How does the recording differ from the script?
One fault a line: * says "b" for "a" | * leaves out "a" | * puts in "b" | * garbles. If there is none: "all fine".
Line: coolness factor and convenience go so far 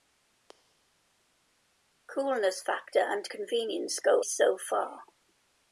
all fine